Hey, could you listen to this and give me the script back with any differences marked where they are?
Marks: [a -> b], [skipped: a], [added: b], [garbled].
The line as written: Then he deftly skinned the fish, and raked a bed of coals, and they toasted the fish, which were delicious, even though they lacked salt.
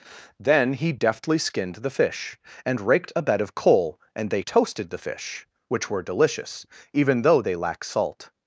Then he deftly skinned the fish, and raked a bed of [coals, -> coal] and they toasted the fish, which were delicious, even though they [lacked -> lack] salt.